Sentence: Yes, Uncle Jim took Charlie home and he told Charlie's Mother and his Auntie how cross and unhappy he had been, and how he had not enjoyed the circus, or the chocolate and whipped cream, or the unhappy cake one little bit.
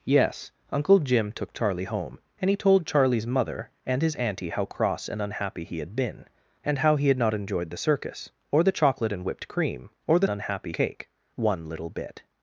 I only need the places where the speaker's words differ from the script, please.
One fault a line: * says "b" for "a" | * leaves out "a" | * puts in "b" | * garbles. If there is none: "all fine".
all fine